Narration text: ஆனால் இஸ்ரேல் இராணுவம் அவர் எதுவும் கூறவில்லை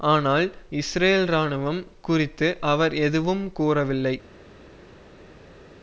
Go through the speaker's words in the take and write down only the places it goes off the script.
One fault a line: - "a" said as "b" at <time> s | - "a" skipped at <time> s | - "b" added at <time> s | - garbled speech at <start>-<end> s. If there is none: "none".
- "குறித்து" added at 2.0 s